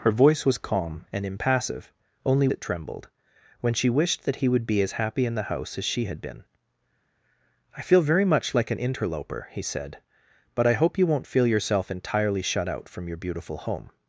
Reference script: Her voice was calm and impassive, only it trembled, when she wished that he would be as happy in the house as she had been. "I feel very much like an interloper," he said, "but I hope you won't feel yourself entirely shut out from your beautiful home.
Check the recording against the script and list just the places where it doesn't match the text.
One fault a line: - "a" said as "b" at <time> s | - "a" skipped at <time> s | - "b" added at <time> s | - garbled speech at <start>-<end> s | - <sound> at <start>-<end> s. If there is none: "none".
none